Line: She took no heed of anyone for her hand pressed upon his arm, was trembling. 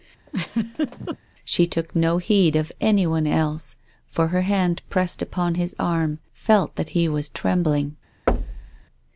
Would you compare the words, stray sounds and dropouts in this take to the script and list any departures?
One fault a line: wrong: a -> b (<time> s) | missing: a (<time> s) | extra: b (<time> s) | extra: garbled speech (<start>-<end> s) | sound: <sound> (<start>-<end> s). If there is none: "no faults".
sound: laugh (0.3-1.2 s)
extra: else (3.3 s)
extra: felt that he (6.3 s)
sound: thud (8.3-8.8 s)